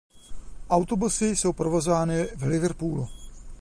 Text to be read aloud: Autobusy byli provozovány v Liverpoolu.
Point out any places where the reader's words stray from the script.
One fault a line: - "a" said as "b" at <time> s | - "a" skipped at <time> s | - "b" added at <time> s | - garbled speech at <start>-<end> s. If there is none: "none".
- "byli" said as "jsou" at 1.4 s